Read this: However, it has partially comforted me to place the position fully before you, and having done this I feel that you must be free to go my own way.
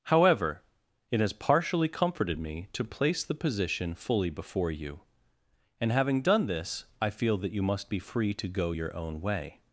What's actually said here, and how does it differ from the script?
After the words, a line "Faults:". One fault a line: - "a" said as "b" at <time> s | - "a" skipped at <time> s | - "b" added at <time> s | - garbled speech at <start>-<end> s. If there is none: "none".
However, it has partially comforted me to place the position fully before you, and having done this I feel that you must be free to go your own way.
Faults:
- "my" said as "your" at 8.7 s